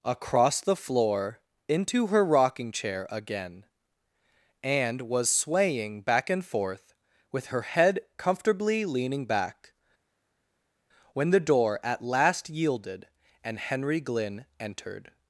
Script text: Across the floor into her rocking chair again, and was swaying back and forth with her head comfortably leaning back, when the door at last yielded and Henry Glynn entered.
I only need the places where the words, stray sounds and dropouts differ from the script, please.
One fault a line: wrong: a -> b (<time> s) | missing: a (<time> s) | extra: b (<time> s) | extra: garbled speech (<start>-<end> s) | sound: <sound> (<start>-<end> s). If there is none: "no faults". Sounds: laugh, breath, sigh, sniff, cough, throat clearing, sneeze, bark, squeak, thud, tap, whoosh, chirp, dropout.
no faults